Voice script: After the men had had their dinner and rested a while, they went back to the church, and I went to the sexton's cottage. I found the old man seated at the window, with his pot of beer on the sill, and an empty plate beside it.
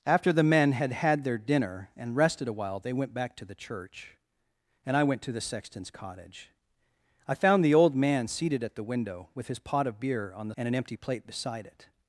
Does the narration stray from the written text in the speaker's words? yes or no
yes